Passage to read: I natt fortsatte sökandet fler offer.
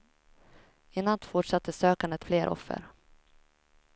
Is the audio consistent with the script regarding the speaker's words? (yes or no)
yes